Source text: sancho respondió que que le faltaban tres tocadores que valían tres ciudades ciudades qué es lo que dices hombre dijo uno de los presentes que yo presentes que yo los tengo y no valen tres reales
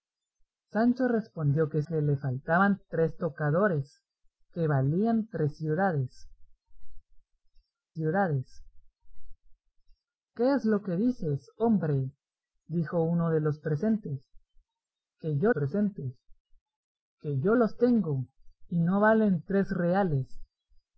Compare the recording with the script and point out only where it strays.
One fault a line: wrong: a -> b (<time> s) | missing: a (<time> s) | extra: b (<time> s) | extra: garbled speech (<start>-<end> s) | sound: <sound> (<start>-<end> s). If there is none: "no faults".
no faults